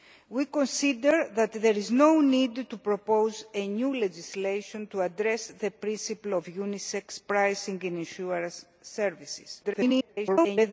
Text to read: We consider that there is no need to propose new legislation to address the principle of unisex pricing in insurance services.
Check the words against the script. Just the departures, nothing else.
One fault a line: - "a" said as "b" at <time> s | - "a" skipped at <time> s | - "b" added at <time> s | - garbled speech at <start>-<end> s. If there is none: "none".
- garbled speech at 9.6-10.7 s